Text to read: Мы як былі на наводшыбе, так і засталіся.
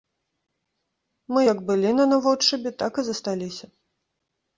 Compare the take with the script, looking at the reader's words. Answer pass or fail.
pass